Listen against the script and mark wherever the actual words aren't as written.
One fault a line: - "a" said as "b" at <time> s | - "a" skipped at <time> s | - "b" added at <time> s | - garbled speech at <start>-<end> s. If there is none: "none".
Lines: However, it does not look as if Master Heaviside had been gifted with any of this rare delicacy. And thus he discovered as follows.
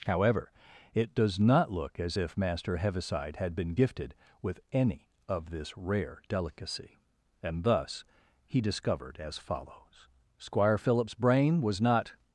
- "Squire Philip's brain was not" added at 10.4 s